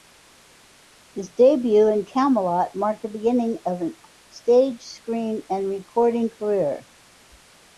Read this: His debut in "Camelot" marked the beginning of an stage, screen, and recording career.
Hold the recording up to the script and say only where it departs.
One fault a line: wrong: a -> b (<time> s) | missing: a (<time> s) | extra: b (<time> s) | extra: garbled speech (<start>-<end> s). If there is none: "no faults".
no faults